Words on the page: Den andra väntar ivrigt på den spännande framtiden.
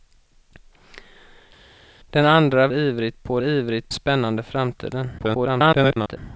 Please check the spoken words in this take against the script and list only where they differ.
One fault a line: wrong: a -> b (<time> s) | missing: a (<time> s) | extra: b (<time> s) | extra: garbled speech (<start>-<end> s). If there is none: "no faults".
missing: väntar (2.7 s)
wrong: den -> ivrigt (3.4 s)
extra: garbled speech (5.2-6.2 s)